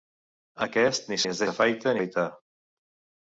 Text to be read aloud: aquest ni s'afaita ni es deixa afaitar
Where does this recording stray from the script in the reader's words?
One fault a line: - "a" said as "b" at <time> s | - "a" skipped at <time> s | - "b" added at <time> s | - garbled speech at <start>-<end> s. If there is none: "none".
- "s'afaita" skipped at 1.2 s
- "deixa" said as "s'afaita" at 1.5 s